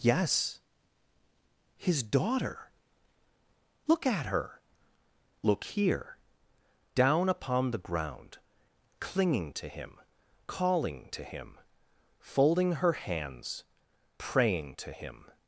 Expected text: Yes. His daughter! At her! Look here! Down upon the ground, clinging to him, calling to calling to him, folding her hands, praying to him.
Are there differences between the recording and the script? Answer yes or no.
yes